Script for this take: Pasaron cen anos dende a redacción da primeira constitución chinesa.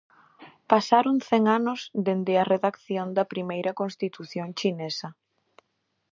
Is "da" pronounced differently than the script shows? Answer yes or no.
no